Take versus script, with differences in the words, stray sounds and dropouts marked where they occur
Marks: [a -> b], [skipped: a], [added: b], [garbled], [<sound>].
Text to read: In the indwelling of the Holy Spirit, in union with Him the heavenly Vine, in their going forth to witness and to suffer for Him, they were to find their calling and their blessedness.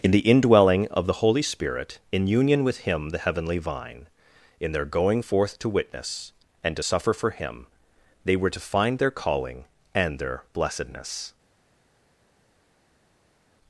In the indwelling of the Holy Spirit, in union with Him the heavenly Vine, in their going forth to witness and to suffer for Him, they were to find their calling and their blessedness.